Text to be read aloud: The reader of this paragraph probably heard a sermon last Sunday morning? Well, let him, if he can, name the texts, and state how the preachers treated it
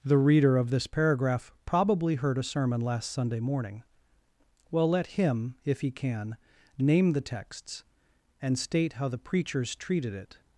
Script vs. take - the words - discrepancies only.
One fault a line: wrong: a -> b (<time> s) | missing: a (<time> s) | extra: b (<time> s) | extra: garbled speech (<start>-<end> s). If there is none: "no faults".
no faults